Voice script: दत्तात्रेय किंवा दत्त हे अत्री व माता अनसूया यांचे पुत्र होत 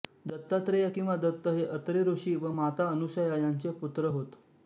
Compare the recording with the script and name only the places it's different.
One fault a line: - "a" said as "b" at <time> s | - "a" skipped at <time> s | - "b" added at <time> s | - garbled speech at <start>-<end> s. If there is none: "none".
- "ऋषी" added at 2.0 s